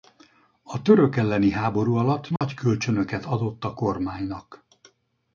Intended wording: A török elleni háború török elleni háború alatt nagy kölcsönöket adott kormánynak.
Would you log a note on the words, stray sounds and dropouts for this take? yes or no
yes